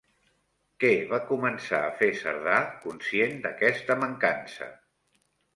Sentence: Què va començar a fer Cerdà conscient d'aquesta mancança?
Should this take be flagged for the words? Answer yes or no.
no